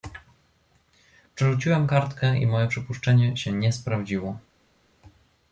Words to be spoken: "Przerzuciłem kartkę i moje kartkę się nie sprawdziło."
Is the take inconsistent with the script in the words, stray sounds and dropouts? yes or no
yes